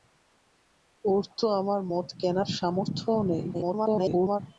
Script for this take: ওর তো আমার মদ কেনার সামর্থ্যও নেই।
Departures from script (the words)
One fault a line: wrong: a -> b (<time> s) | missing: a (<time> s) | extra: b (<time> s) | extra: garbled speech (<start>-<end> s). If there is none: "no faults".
extra: garbled speech (3.5-4.4 s)